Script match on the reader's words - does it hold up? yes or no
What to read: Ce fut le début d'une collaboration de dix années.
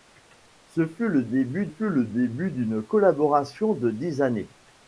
no